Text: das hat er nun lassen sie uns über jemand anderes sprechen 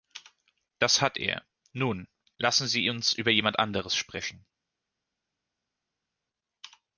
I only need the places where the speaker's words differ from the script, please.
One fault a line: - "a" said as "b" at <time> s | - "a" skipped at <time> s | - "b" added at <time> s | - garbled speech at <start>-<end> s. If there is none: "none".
none